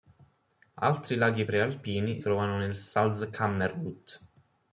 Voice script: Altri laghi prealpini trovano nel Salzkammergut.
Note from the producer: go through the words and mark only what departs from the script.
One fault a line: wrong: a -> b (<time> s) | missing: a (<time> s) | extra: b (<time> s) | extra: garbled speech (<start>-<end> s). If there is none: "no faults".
no faults